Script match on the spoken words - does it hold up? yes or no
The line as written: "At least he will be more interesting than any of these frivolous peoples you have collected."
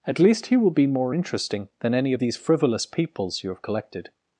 yes